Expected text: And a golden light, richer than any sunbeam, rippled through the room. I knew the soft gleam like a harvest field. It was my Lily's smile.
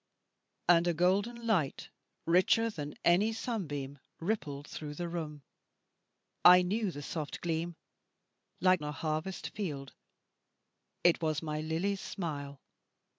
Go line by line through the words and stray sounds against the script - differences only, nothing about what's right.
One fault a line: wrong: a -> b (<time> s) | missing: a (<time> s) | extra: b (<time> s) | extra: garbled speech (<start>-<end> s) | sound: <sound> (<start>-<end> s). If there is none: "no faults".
no faults